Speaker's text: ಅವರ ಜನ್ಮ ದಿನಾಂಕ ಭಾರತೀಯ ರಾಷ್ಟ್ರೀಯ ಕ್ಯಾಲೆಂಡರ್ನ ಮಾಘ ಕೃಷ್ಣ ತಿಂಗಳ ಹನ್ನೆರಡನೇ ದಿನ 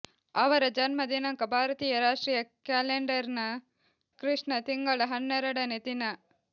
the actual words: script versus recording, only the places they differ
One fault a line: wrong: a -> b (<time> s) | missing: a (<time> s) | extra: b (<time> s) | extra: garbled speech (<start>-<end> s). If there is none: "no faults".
missing: ಮಾಘ (3.4 s)